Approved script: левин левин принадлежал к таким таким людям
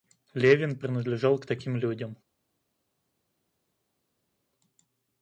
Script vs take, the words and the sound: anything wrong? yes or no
yes